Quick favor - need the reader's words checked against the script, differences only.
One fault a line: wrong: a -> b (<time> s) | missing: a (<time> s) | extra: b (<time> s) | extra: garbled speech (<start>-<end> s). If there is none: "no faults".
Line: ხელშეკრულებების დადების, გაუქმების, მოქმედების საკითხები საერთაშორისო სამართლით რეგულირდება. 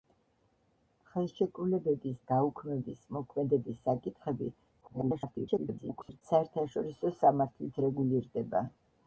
missing: დადების (2.1 s)
extra: garbled speech (4.8-6.2 s)